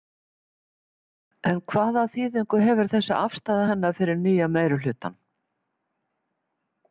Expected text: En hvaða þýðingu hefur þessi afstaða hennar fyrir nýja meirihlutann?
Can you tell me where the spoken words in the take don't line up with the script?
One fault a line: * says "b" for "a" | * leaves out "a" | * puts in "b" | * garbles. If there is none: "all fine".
all fine